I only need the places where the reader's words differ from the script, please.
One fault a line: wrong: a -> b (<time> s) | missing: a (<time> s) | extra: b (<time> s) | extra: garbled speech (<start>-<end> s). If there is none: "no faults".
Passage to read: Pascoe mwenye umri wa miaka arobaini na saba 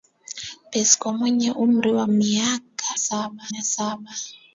wrong: arobaini -> saba (3.0 s)